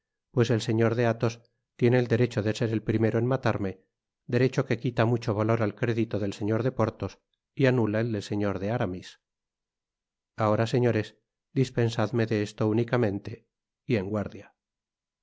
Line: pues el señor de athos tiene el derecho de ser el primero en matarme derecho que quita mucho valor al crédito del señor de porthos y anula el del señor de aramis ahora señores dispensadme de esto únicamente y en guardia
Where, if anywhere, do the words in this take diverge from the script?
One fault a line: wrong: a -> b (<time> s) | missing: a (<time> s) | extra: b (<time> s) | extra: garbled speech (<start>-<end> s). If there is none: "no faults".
no faults